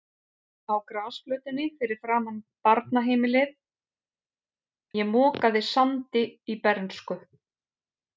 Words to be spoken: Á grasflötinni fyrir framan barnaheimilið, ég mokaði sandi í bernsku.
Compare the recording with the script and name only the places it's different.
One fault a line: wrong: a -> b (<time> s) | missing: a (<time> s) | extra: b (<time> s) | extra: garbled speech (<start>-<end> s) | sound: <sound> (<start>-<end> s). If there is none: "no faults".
no faults